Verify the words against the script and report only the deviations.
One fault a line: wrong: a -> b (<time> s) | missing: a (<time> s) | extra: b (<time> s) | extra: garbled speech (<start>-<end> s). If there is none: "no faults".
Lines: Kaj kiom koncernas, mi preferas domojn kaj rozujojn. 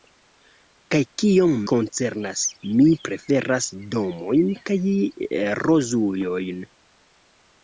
no faults